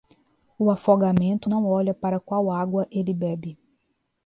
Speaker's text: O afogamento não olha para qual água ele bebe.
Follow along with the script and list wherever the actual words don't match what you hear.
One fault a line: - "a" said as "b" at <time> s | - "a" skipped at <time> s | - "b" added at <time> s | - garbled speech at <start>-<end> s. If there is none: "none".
none